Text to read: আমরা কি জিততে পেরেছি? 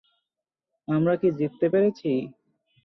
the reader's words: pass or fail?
pass